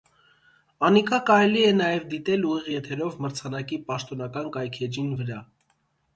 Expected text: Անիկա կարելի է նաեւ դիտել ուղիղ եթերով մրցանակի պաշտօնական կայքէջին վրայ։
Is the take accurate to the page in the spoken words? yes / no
yes